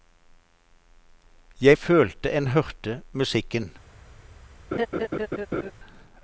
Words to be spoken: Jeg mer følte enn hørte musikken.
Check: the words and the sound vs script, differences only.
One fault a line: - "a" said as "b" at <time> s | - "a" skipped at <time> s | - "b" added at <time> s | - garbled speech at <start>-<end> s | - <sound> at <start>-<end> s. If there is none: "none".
- "mer" skipped at 1.8 s
- laugh at 4.7-5.7 s